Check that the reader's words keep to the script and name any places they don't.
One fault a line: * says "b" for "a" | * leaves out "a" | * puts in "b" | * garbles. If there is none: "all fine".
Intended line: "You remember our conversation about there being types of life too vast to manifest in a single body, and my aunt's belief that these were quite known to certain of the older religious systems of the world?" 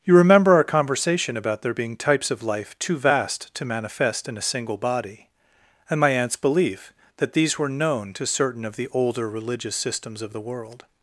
* leaves out "quite"